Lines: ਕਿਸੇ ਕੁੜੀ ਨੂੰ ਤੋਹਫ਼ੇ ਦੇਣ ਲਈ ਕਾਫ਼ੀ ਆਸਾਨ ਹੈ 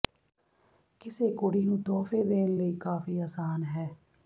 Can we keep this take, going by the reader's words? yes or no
yes